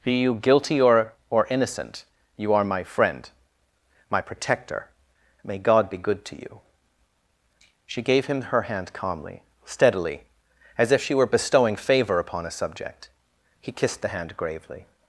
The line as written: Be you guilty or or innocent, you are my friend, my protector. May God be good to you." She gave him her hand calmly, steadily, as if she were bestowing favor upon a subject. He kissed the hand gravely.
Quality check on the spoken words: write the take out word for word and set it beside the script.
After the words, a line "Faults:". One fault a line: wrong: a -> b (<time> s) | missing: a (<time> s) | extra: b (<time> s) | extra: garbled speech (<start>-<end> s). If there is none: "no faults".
Be you guilty or or innocent, you are my friend, my protector. May God be good to you." She gave him her hand calmly, steadily, as if she were bestowing favor upon a subject. He kissed the hand gravely.
Faults:
no faults